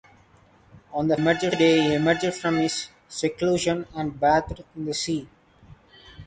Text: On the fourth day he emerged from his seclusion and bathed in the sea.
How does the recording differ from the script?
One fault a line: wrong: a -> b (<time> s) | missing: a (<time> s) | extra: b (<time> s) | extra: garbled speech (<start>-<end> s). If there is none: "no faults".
wrong: fourth -> emerged (1.1 s)